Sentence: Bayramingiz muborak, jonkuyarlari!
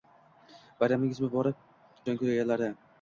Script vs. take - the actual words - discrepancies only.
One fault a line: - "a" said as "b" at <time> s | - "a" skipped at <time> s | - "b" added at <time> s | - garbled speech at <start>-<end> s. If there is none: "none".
none